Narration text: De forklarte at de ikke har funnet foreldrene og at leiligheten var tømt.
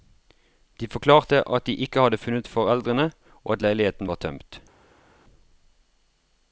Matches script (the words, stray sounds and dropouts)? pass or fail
fail